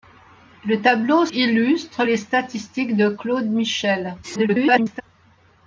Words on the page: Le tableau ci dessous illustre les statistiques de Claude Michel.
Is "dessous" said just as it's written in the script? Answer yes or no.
no